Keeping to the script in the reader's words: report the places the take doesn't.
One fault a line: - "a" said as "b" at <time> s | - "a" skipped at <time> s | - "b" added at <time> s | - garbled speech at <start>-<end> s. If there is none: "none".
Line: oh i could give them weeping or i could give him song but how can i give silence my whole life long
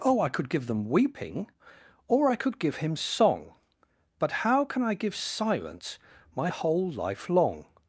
none